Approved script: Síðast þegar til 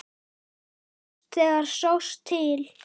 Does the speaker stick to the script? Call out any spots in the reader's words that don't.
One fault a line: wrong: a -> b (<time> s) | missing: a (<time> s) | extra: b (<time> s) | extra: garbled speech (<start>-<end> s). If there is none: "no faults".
extra: sást (1.8 s)